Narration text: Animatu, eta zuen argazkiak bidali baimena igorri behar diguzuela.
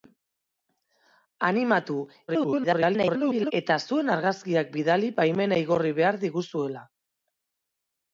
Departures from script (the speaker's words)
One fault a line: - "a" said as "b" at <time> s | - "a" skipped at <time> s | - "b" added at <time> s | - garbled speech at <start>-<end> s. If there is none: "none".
- garbled speech at 2.3-3.5 s